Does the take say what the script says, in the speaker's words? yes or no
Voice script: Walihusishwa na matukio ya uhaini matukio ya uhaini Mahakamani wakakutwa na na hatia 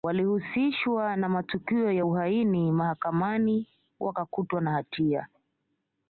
no